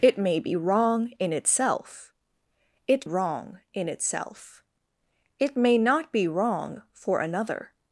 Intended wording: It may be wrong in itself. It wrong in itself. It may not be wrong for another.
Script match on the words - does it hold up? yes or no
yes